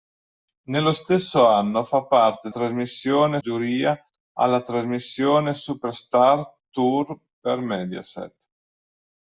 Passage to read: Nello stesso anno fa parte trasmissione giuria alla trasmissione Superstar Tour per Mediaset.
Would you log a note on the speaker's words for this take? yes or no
no